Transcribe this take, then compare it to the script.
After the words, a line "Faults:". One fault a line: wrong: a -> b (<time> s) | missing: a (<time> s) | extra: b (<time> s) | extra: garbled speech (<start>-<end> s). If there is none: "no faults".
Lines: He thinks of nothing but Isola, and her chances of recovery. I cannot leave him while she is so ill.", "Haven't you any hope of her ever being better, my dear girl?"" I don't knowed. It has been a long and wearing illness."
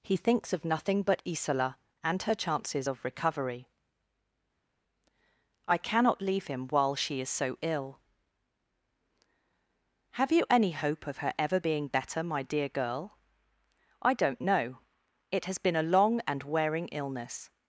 He thinks of nothing but Isola, and her chances of recovery. I cannot leave him while she is so ill.", "Have you any hope of her ever being better, my dear girl?"" I don't know. It has been a long and wearing illness."
Faults:
wrong: Haven't -> Have (10.1 s)
wrong: knowed -> know (14.4 s)